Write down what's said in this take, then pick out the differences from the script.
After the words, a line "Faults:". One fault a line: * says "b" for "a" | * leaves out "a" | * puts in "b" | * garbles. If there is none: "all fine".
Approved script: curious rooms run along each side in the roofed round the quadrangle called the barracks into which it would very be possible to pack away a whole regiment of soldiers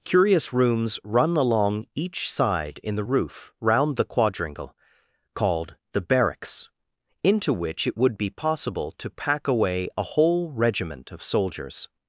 curious rooms run along each side in the roof round the quadrangle called the barracks into which it would be possible to pack away a whole regiment of soldiers
Faults:
* says "roof" for "roofed"
* leaves out "very"